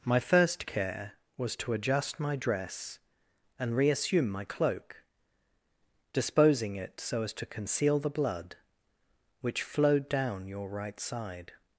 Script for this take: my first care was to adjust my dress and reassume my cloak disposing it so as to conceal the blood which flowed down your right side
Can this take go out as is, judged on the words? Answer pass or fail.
pass